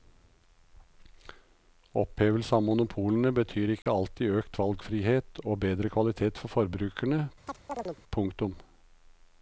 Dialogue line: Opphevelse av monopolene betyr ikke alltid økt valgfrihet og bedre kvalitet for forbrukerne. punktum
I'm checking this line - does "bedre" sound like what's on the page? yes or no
yes